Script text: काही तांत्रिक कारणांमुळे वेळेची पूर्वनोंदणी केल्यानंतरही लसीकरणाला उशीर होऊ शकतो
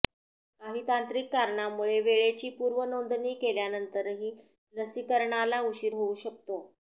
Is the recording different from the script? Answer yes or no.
no